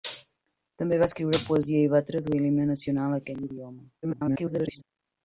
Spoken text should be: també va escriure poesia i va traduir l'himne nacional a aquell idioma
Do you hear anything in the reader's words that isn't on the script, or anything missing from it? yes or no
yes